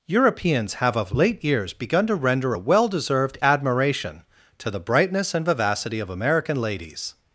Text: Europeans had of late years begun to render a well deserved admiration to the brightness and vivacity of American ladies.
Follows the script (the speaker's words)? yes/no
no